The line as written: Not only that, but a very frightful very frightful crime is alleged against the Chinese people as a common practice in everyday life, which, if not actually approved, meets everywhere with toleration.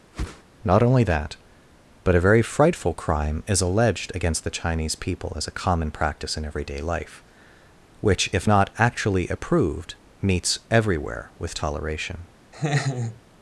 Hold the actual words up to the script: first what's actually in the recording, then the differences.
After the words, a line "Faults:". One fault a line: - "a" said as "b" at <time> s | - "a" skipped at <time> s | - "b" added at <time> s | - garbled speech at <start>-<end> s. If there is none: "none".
Not only that, but a very frightful crime is alleged against the Chinese people as a common practice in everyday life, which, if not actually approved, meets everywhere with toleration.
Faults:
- "very frightful" skipped at 2.9 s